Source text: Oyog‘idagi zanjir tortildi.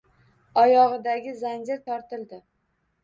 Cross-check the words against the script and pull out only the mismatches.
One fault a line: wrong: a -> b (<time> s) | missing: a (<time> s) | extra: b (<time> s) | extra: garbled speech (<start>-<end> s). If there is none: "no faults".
no faults